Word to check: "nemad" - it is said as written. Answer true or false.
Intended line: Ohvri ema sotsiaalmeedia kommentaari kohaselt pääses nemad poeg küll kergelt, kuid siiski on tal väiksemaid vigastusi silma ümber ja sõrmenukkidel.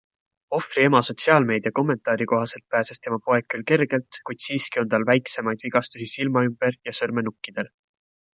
false